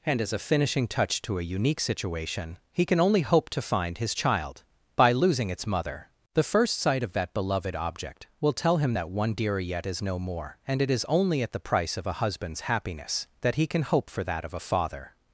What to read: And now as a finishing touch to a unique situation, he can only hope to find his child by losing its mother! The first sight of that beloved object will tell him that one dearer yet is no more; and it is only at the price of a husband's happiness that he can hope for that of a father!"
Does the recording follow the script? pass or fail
fail